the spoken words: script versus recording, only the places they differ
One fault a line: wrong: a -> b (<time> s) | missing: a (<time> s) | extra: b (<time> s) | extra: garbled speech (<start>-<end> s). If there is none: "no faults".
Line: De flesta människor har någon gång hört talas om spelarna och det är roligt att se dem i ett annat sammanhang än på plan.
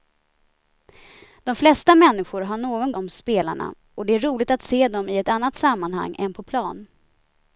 missing: gång hört talas (2.9 s)